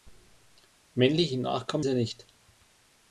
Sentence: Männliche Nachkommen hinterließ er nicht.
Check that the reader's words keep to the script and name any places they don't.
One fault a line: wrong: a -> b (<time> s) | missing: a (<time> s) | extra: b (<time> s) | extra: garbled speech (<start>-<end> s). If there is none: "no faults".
missing: hinterließ (1.9 s)